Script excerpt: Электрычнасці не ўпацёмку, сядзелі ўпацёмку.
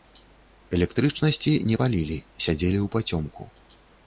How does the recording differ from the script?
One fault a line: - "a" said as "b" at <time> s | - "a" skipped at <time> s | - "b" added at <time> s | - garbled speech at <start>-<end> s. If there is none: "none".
- "ўпацёмку" said as "палілі" at 1.8 s